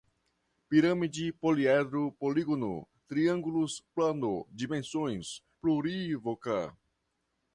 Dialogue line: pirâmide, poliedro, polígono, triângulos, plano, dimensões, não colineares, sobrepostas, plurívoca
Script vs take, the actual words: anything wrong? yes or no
yes